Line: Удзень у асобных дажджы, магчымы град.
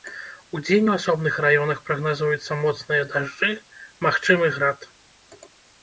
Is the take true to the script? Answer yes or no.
no